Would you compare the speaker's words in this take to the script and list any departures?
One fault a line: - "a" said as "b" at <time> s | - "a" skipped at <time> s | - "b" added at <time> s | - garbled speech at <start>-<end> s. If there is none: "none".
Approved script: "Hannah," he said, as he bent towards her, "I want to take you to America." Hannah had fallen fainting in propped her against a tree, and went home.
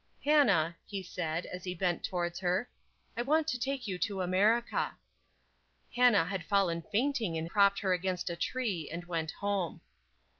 none